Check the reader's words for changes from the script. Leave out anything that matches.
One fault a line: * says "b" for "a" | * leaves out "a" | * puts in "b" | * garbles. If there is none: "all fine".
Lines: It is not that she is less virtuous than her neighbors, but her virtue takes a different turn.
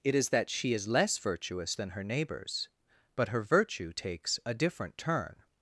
* leaves out "not"